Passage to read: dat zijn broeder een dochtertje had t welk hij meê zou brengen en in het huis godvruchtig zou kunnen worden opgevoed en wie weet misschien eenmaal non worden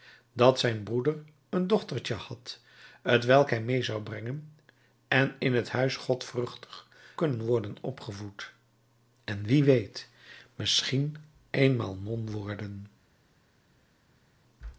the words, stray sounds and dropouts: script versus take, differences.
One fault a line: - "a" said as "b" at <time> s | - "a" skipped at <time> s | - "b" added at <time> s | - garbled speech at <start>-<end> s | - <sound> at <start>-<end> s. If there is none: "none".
- "zou" skipped at 6.9 s